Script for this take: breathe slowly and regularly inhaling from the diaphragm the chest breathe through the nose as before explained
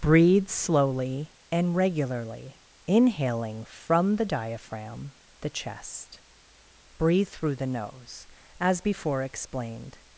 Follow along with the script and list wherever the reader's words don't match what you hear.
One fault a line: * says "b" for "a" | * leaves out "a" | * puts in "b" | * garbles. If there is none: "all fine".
all fine